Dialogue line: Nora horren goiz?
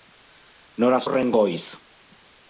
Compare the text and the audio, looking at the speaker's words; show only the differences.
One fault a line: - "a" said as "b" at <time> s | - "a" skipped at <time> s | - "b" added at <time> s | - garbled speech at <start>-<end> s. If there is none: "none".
none